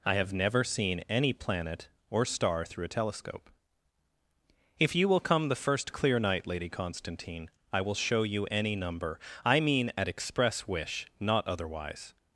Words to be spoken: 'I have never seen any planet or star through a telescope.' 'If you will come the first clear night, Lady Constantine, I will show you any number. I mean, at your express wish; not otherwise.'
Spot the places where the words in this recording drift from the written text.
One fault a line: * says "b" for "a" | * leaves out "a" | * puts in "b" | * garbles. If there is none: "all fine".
* leaves out "your"